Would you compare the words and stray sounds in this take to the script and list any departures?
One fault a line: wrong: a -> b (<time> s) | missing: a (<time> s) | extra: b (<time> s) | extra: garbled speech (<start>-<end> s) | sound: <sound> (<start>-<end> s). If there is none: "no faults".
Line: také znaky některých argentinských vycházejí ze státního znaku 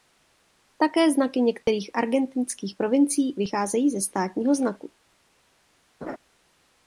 sound: dropout (1.6-1.7 s)
extra: provincií (2.7 s)
sound: laugh (6.0-6.2 s)